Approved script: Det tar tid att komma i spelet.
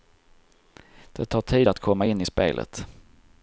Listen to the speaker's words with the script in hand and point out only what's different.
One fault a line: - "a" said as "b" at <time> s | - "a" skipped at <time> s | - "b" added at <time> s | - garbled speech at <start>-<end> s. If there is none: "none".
- "in" added at 2.0 s